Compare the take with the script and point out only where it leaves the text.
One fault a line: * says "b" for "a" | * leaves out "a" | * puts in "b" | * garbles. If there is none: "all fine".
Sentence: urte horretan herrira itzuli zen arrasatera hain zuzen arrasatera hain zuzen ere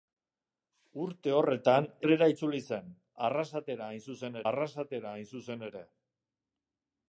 all fine